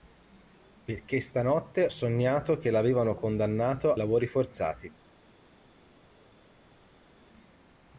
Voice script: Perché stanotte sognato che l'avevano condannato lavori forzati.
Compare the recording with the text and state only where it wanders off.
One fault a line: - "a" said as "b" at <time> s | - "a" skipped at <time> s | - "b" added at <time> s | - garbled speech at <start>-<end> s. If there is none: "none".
none